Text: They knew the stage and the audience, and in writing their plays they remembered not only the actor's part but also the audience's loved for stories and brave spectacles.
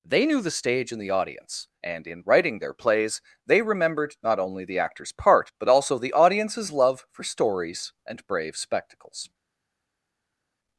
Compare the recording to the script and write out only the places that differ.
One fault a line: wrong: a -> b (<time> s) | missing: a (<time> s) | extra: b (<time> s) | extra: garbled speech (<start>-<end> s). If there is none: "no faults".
wrong: loved -> love (6.7 s)